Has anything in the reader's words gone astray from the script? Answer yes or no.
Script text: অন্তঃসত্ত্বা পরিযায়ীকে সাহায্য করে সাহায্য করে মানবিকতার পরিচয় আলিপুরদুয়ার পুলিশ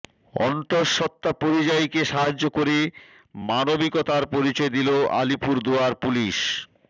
yes